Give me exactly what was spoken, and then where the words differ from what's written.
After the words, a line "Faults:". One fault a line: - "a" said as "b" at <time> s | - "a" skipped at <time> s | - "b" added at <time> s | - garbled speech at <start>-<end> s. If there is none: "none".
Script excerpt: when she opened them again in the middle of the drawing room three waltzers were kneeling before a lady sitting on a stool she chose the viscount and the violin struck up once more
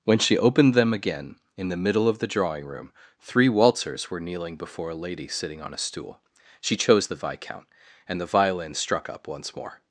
when she opened them again in the middle of the drawing room three waltzers were kneeling before a lady sitting on a stool she chose the viscount and the violin struck up once more
Faults:
none